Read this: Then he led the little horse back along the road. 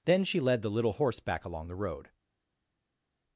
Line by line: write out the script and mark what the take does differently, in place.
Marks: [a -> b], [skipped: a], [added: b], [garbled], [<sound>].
Then [he -> she] led the little horse back along the road.